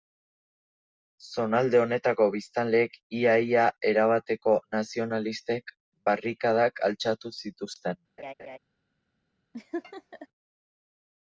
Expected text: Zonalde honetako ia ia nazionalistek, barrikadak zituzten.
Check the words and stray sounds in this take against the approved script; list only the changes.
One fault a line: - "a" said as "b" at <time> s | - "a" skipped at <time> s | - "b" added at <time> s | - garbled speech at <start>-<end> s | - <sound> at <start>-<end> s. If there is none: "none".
- "biztanleek" added at 2.4 s
- "erabateko" added at 3.9 s
- "altxatu" added at 6.9 s
- laugh at 8.2-8.6 s
- laugh at 9.5-10.3 s